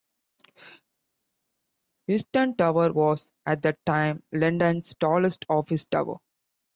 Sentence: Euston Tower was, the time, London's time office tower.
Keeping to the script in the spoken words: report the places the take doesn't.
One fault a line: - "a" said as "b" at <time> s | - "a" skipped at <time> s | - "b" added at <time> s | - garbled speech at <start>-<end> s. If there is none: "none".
- "at" added at 3.4 s
- "time" said as "tallest" at 5.0 s